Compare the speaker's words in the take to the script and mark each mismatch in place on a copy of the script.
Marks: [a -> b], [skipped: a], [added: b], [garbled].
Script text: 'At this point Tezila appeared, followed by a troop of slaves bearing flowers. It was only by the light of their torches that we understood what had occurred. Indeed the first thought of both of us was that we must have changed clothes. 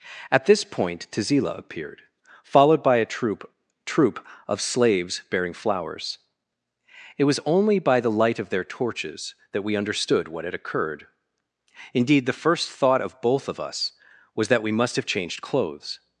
'At this point Tezila appeared, followed by a troop [added: troop] of slaves bearing flowers. It was only by the light of their torches that we understood what had occurred. Indeed the first thought of both of us was that we must have changed clothes.